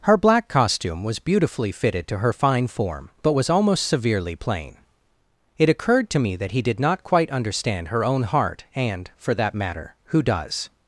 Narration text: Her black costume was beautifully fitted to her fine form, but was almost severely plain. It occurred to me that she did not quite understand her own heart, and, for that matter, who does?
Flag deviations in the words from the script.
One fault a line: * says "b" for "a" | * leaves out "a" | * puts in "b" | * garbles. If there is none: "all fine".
* says "he" for "she"